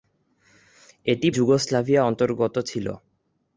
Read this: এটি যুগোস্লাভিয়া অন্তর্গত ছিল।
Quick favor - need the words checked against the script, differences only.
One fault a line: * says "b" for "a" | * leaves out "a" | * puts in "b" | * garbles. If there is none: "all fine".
all fine